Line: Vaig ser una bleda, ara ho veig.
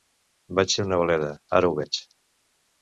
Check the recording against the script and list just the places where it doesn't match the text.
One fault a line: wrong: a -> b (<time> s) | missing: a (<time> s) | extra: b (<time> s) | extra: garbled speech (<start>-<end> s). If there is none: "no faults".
no faults